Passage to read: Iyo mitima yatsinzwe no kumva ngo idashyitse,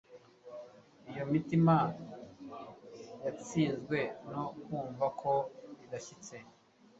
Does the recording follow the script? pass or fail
fail